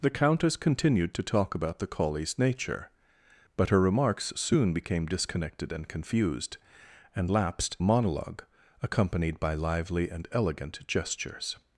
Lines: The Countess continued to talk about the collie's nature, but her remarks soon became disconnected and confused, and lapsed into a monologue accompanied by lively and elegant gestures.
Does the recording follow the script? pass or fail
fail